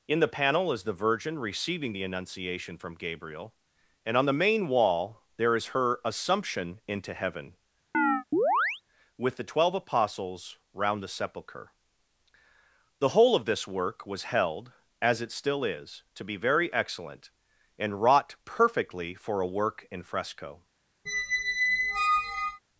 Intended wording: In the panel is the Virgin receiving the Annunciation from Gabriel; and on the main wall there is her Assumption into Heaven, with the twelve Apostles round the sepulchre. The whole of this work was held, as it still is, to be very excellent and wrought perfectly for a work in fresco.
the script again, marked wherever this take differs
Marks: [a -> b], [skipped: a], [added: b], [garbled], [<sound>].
In the panel is the Virgin receiving the Annunciation from Gabriel; and on the main wall there is her Assumption into Heaven, [chirp] with the twelve Apostles round the sepulchre. The whole of this work was held, as it still is, to be very excellent and wrought perfectly for a work in fresco. [squeak]